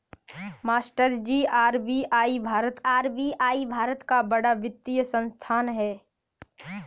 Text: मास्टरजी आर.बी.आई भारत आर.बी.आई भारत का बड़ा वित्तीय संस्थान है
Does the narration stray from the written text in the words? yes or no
no